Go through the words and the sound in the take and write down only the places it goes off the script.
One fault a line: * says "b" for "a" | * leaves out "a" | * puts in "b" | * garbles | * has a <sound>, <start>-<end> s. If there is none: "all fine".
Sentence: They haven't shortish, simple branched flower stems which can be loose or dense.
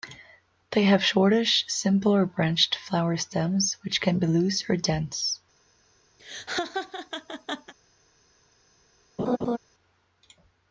* says "have" for "haven't"
* puts in "or"
* has a laugh, 6.2-7.7 s
* has a laugh, 9.2-9.6 s